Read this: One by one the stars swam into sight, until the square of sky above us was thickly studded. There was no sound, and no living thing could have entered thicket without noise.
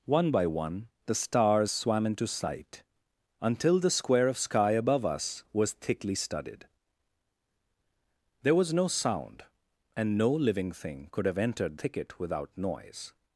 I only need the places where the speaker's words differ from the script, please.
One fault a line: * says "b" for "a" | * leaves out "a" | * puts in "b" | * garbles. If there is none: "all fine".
all fine